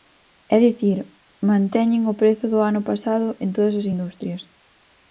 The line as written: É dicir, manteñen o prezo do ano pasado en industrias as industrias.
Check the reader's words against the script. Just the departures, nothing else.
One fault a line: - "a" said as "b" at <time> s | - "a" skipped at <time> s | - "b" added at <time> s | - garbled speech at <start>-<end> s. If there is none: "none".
- "industrias" said as "todas" at 3.5 s